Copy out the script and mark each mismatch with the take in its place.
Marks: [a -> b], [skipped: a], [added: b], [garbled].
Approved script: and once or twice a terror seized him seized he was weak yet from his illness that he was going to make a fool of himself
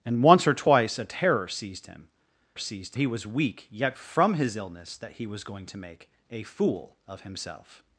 and once or twice a terror seized him seized he was weak yet from his illness that he was going to make a fool of himself